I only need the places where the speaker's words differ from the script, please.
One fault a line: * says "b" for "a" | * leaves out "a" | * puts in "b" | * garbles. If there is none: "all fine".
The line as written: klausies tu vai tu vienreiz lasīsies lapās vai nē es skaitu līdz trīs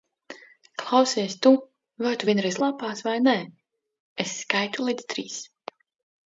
* leaves out "lasīsies"